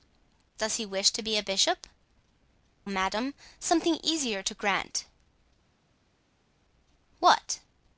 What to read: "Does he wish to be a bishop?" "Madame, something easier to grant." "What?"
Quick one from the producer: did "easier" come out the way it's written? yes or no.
yes